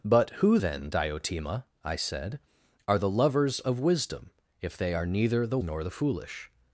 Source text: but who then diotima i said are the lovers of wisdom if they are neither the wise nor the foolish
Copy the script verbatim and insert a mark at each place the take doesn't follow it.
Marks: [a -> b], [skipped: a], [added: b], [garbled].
but who then diotima i said are the lovers of wisdom if they are neither the [skipped: wise] nor the foolish